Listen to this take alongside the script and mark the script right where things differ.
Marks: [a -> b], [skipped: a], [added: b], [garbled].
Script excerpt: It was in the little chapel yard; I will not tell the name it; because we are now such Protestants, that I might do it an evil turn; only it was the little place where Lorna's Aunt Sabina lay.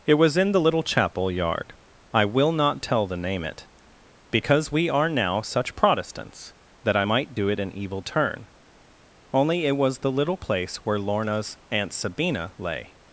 It was in the little chapel yard; I will not tell the name it; because we are now such Protestants, that I might do it an evil turn; only it was the little place where Lorna's Aunt Sabina lay.